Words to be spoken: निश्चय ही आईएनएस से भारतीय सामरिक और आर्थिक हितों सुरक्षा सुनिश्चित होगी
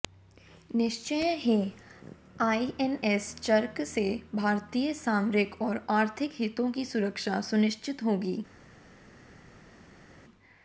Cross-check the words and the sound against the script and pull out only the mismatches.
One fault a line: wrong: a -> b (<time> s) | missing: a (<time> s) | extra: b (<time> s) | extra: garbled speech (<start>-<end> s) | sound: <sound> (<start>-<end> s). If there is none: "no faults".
extra: च्रक (3.4 s)
extra: की (6.7 s)